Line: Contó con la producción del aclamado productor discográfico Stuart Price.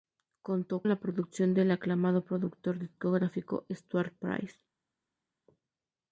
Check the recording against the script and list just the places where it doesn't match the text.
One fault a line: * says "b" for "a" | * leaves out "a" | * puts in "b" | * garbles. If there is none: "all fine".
* leaves out "con"